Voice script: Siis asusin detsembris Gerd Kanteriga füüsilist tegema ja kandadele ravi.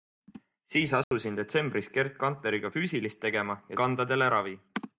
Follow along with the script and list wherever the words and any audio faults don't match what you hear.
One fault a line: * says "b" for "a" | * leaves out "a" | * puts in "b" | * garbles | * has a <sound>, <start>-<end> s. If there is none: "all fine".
* has a dropout, 1.0-1.1 s